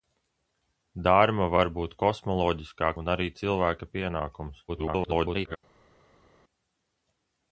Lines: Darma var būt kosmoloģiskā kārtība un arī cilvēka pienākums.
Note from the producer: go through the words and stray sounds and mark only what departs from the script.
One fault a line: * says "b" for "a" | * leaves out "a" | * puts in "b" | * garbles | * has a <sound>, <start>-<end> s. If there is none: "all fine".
* leaves out "kārtība"
* garbles